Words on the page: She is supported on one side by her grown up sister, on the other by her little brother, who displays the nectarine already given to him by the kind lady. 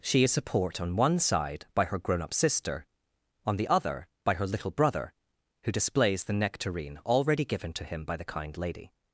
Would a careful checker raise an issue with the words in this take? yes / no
yes